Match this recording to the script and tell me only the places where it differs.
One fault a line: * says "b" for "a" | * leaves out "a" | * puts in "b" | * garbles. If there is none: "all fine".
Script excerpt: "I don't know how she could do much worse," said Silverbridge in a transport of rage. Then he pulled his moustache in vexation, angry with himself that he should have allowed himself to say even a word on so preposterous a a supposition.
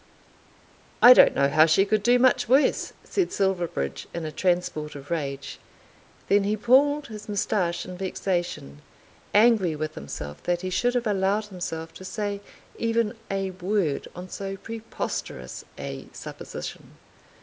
* leaves out "a"